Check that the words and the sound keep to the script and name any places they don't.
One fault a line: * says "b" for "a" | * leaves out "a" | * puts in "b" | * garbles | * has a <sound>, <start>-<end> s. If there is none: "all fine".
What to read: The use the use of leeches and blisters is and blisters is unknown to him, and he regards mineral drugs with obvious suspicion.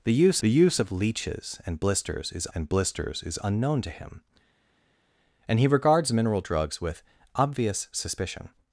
all fine